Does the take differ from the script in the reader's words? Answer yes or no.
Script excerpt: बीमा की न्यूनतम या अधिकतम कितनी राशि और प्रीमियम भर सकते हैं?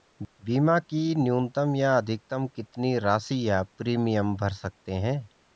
yes